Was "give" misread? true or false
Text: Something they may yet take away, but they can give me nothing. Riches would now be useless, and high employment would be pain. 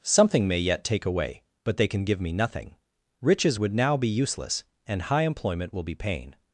false